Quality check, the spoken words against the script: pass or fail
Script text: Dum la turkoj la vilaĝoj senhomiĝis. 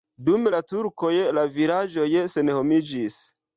pass